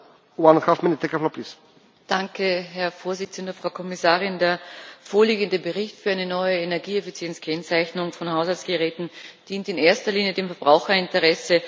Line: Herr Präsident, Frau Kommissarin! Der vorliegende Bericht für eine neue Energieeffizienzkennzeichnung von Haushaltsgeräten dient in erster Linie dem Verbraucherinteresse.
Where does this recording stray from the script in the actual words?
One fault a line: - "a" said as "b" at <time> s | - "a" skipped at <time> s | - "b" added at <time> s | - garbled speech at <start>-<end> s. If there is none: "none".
none